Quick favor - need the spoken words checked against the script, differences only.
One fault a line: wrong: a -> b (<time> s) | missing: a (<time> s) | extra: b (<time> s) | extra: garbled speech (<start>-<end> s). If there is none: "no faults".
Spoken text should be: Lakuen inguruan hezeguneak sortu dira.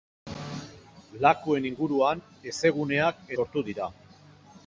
no faults